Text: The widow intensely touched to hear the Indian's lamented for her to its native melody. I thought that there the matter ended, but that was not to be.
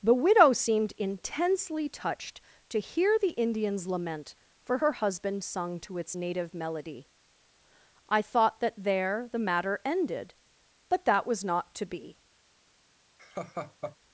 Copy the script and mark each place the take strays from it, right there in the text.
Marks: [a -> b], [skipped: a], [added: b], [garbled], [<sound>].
The widow [added: seemed] intensely touched to hear the Indian's [lamented -> lament] for her [added: husband sung] to its native melody. I thought that there the matter ended, but that was not to be. [laugh]